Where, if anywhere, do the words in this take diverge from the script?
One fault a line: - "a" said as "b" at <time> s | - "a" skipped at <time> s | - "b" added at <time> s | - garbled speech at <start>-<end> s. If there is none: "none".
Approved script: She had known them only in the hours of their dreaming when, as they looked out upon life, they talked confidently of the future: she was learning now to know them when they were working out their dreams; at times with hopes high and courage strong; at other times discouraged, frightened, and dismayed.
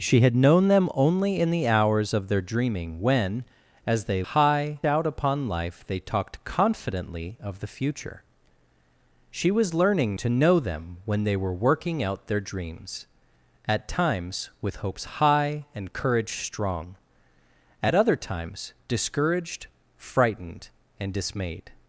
- "looked" said as "high" at 4.2 s
- "now" skipped at 10.2 s